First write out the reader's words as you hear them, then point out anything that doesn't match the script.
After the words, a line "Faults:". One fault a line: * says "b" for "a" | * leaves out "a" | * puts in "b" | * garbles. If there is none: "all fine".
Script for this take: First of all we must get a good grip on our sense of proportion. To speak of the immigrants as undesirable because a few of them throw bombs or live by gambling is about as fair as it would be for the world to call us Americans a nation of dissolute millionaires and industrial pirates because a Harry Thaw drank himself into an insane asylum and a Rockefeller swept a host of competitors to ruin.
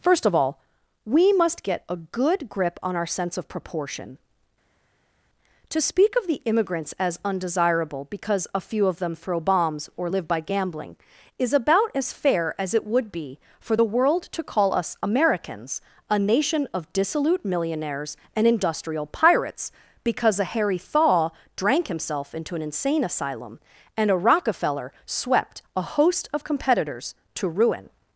First of all we must get a good grip on our sense of proportion. To speak of the immigrants as undesirable because a few of them throw bombs or live by gambling is about as fair as it would be for the world to call us Americans a nation of dissolute millionaires and industrial pirates because a Harry Thaw drank himself into an insane asylum and a Rockefeller swept a host of competitors to ruin.
Faults:
all fine